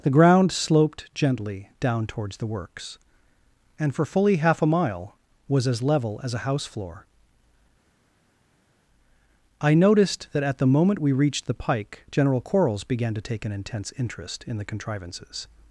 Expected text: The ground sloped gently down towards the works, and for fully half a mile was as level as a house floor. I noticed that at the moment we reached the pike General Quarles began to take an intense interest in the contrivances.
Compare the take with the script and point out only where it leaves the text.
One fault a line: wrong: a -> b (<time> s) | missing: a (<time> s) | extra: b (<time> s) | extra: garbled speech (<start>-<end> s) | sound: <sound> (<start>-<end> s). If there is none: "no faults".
no faults